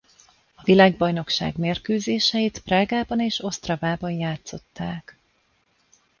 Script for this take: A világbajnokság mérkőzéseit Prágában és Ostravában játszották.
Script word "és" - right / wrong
right